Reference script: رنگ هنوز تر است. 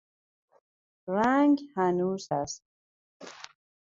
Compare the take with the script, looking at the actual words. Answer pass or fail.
fail